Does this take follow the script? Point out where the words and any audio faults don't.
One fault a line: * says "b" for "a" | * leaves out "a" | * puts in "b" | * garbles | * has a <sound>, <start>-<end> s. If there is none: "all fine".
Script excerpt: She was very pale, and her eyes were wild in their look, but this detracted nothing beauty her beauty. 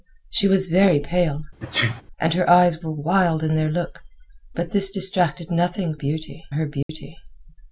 * has a sneeze, 1.6-2.0 s
* has a dropout, 6.8-6.9 s